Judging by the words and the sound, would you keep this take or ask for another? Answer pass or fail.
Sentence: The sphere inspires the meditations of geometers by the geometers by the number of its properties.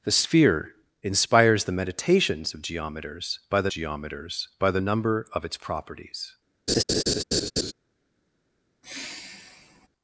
fail